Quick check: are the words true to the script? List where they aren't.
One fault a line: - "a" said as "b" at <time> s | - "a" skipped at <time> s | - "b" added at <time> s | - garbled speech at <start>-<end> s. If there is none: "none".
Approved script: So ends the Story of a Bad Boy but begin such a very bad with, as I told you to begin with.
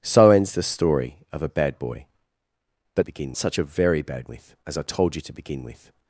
none